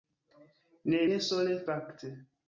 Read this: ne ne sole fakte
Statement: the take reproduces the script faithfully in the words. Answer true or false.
true